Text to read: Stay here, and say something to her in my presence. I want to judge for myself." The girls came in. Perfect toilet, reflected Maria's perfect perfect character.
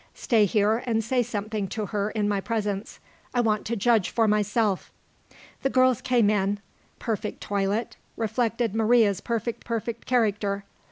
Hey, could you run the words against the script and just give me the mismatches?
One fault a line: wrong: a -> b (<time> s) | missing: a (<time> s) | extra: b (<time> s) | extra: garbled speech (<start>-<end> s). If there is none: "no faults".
no faults